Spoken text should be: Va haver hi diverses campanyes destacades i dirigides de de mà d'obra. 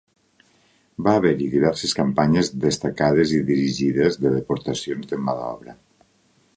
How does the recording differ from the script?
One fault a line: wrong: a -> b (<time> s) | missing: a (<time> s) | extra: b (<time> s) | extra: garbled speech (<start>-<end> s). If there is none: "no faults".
extra: deportacions (4.4 s)